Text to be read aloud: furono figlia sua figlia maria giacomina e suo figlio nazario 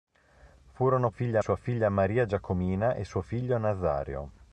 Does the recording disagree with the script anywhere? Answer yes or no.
no